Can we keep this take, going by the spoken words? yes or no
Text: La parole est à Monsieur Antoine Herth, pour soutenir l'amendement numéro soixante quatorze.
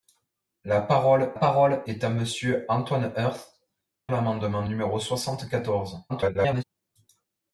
no